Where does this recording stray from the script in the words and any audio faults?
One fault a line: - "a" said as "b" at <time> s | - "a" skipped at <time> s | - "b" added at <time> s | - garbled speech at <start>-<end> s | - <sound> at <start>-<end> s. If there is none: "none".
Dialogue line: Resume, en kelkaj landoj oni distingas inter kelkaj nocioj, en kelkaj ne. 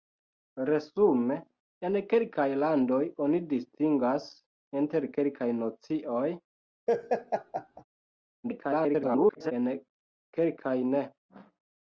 - laugh at 6.9-7.8 s
- garbled speech at 8.4-9.5 s